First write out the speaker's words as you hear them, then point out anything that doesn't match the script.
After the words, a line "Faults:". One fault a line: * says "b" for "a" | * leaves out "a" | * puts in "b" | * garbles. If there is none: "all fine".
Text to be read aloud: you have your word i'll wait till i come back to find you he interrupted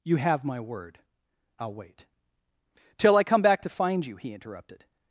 you have my word i'll wait till i come back to find you he interrupted
Faults:
* says "my" for "your"